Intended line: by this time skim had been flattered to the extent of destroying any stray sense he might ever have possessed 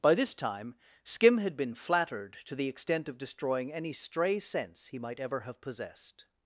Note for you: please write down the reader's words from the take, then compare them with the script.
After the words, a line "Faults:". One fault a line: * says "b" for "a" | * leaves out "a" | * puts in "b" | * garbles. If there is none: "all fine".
by this time skim had been flattered to the extent of destroying any stray sense he might ever have possessed
Faults:
all fine